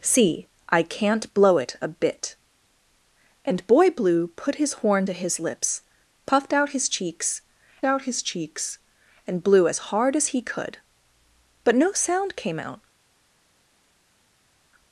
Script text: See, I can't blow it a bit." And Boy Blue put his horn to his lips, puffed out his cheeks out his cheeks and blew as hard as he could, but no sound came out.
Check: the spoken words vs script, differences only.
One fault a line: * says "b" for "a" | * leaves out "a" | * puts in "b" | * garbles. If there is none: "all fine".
all fine